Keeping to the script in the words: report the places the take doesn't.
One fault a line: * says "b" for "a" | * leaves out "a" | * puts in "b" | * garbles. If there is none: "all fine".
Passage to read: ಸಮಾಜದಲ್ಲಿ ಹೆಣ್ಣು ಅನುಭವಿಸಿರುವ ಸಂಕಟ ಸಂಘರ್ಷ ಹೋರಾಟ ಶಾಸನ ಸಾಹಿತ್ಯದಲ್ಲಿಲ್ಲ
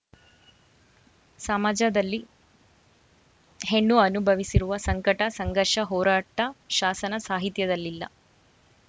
all fine